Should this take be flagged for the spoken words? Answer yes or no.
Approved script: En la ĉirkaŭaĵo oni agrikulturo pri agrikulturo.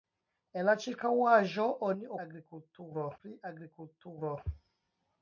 no